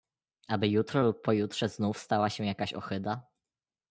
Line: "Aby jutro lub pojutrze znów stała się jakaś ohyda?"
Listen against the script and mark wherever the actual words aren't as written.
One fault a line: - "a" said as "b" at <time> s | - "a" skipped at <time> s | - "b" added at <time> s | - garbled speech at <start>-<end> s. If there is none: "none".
none